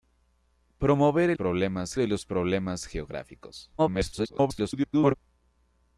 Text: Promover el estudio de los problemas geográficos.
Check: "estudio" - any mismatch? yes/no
yes